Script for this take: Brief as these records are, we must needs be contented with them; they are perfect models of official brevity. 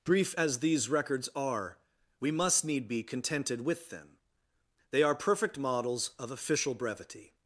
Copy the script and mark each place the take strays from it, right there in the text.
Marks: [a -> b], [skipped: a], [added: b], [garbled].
Brief as these records are, we must [needs -> need] be contented with them; they are perfect models of official brevity.